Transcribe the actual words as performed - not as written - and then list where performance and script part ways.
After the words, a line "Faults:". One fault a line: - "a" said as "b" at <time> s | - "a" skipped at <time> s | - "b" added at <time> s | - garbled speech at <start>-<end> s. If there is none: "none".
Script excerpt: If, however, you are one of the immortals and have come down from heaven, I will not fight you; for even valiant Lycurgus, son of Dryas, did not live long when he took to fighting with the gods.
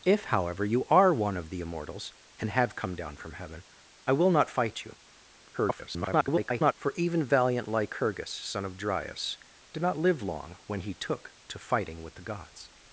If, however, you are one of the immortals and have come down from heaven, I will not fight you; [garbled] for even valiant Lycurgus, son of Dryas, did not live long when he took to fighting with the gods.
Faults:
- garbled speech at 5.5-6.7 s